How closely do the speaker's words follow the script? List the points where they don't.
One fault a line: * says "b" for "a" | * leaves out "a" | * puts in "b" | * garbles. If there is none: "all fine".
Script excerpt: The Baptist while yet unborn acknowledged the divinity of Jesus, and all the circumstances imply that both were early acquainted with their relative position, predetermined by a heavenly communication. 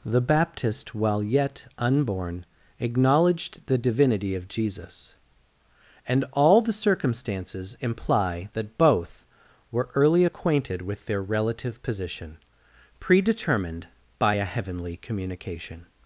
all fine